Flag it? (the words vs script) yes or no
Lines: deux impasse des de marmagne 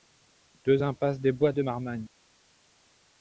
yes